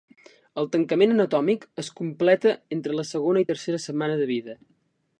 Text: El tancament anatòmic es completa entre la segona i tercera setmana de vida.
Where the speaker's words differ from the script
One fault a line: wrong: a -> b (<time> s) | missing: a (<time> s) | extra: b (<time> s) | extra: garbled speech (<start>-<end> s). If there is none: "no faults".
no faults